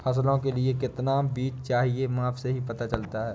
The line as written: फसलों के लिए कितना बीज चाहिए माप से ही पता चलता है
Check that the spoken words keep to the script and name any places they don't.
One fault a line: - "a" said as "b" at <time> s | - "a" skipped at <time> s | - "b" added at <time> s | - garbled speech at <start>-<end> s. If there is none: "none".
none